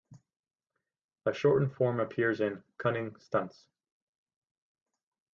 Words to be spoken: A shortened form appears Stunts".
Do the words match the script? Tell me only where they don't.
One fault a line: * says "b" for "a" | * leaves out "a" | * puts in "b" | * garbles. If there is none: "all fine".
* puts in "in Cunning"